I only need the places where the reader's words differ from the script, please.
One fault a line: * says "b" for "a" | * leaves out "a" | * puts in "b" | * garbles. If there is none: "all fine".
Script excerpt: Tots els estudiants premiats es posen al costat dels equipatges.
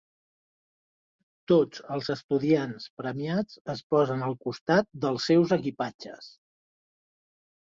* puts in "seus"